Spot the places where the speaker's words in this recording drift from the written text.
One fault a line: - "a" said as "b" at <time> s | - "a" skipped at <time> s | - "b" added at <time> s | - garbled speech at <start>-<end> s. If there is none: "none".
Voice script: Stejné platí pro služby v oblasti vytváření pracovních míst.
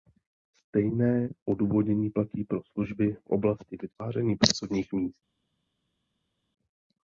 - "odůvodnění" added at 1.4 s